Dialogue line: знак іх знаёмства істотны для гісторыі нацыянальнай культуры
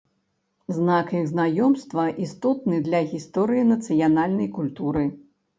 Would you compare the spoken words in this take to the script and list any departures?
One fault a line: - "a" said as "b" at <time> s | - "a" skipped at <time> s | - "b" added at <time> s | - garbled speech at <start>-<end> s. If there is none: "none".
none